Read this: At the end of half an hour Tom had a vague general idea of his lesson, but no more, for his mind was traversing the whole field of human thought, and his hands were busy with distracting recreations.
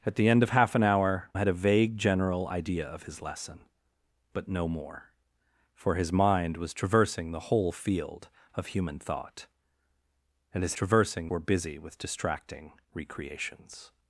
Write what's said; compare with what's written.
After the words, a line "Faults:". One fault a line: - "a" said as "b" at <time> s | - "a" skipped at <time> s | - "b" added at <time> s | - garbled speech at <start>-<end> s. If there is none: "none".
At the end of half an hour Had a vague general idea of his lesson, but no more, for his mind was traversing the whole field of human thought, and his traversing were busy with distracting recreations.
Faults:
- "Tom" skipped at 1.3 s
- "hands" said as "traversing" at 10.7 s